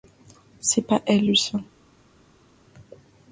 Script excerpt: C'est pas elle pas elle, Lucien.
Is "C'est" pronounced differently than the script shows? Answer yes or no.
no